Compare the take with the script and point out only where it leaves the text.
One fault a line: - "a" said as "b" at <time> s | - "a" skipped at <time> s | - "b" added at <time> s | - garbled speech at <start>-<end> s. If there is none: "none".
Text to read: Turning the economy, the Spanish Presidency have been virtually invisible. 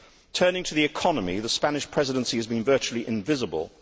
- "to" added at 0.6 s
- "have" said as "has" at 2.4 s